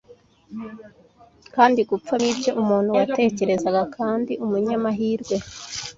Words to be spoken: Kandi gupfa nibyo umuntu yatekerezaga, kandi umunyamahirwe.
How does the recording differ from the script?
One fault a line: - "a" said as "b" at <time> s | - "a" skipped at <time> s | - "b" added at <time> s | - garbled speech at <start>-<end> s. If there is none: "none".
none